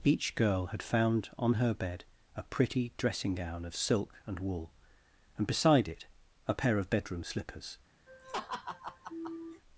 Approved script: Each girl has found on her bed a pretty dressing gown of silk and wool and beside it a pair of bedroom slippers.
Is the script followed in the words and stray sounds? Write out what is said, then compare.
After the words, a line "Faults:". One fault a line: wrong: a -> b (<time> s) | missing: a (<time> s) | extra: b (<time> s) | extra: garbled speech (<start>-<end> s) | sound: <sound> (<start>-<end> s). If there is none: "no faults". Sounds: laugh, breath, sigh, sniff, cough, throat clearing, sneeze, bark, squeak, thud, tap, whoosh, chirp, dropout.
Each girl had found on her bed a pretty dressing gown of silk and wool and beside it a pair of bedroom slippers.
Faults:
wrong: has -> had (0.7 s)
sound: laugh (8.1-9.6 s)